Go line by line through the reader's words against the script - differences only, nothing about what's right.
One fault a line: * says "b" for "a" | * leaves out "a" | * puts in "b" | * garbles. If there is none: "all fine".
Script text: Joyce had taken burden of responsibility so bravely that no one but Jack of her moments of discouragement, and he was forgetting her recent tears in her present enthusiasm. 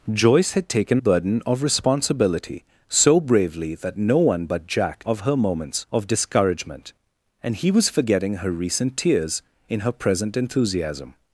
all fine